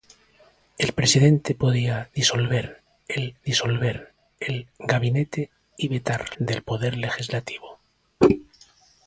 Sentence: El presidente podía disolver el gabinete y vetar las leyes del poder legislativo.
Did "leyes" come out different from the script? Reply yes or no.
yes